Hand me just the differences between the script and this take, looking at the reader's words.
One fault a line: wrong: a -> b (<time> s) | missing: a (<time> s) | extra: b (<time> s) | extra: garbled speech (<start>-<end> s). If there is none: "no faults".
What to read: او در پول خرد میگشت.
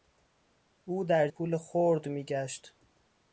no faults